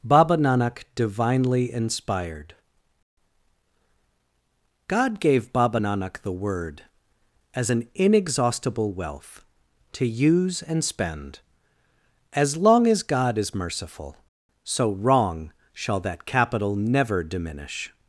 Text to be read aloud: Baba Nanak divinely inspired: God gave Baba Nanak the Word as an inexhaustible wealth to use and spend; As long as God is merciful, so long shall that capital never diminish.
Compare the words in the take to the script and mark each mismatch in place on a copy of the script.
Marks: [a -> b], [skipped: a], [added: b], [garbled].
Baba Nanak divinely inspired: God gave Baba Nanak the Word as an inexhaustible wealth to use and spend; As long as God is merciful, so [long -> wrong] shall that capital never diminish.